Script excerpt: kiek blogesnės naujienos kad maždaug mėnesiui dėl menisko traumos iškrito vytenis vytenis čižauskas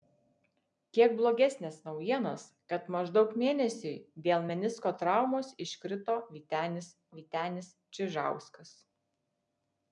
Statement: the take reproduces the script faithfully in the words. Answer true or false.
true